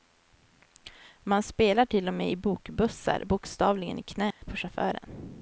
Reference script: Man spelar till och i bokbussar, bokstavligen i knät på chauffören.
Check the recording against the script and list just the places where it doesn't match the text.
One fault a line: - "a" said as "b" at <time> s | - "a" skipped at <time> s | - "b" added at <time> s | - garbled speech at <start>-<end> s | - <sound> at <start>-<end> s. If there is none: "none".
- "med" added at 2.1 s
- dropout at 4.3-4.4 s